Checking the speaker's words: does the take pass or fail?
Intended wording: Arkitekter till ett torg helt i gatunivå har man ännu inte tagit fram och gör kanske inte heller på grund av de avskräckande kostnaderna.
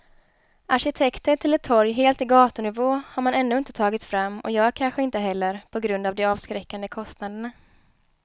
pass